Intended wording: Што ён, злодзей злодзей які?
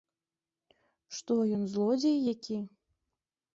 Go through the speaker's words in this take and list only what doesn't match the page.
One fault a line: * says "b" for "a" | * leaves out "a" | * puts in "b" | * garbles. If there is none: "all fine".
* leaves out "злодзей"